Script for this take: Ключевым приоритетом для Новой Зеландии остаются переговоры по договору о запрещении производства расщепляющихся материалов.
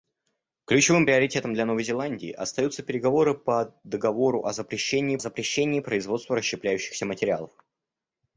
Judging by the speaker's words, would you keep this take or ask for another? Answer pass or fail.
fail